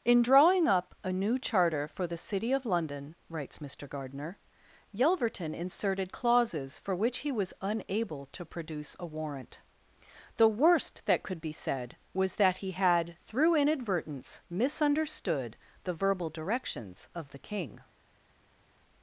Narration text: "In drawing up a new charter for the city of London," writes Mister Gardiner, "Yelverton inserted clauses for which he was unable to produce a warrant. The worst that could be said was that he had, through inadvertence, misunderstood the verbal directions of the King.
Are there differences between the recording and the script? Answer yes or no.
no